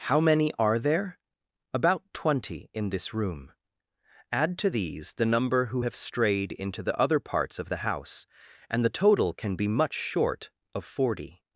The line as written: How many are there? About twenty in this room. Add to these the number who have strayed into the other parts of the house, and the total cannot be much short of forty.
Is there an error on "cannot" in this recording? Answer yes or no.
yes